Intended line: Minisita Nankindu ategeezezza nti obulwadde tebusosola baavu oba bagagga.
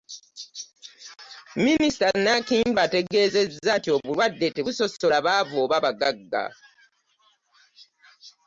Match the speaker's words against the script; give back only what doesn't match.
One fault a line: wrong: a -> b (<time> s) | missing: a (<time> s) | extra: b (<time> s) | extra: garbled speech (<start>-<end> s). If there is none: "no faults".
no faults